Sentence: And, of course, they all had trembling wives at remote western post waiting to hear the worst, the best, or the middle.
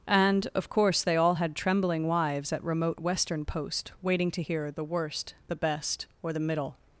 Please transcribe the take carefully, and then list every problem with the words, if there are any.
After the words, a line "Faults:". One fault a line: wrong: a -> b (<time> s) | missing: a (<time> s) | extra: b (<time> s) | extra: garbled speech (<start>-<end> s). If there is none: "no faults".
And, of course, they all had trembling wives at remote western post waiting to hear the worst, the best, or the middle.
Faults:
no faults